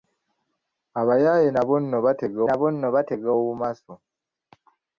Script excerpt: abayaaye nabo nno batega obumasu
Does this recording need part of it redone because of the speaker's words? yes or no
yes